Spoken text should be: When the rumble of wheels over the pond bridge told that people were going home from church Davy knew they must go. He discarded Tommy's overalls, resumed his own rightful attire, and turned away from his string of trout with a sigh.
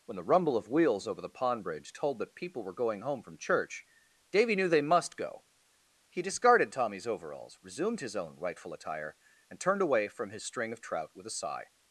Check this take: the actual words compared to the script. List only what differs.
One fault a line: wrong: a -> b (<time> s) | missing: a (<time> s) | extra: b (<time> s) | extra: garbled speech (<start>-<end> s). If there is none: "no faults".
no faults